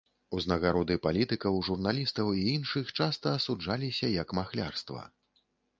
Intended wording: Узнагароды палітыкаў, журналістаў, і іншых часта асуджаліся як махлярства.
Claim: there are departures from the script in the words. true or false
false